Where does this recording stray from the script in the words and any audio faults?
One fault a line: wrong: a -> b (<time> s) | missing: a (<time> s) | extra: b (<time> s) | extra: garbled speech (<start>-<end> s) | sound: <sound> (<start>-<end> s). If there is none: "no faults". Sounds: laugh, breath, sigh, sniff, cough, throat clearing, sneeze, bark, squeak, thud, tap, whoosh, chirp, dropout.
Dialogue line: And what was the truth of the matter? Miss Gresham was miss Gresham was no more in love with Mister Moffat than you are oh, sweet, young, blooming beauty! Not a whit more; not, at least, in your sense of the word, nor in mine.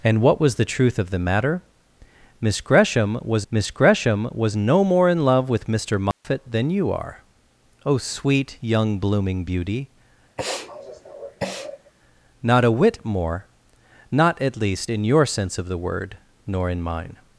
sound: dropout (6.1-6.2 s)
sound: sniff (10.4-11.9 s)